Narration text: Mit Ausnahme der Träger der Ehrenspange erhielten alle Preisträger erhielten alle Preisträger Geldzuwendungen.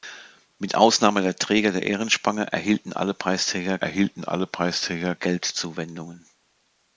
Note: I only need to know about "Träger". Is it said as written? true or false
true